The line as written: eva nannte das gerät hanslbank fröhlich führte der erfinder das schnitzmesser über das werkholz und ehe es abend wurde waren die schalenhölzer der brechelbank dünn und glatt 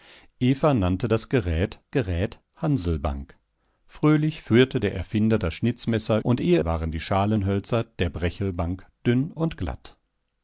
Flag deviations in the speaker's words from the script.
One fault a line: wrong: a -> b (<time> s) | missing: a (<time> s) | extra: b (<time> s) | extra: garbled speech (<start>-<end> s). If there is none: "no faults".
extra: gerät (1.9 s)
missing: über das werkholz (6.2 s)
missing: es abend wurde (6.6 s)